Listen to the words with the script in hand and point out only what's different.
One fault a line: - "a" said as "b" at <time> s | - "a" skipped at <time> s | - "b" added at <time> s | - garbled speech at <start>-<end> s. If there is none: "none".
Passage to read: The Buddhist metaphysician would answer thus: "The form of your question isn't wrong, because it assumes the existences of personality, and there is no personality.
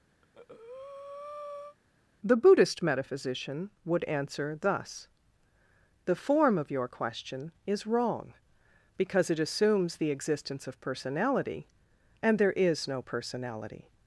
- "isn't" said as "is" at 7.6 s
- "existences" said as "existence" at 10.1 s